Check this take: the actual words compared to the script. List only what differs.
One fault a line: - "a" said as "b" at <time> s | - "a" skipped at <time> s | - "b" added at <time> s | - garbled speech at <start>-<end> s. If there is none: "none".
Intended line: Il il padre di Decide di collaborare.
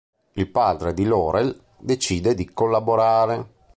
- "il" skipped at 0.5 s
- "Laurel" added at 1.0 s